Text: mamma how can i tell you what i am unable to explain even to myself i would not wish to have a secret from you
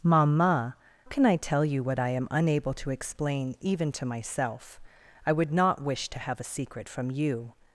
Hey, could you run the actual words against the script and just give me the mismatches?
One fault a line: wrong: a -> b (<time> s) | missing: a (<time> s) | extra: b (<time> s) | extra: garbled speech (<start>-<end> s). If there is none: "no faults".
missing: how (0.8 s)